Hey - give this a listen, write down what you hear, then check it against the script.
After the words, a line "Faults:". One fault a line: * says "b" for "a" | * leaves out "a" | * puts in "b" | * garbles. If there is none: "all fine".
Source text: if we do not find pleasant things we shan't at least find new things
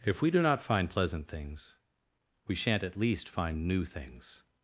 if we do not find pleasant things we shan't at least find new things
Faults:
all fine